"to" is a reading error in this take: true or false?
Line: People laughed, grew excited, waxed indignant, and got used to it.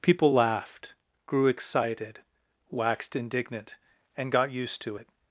false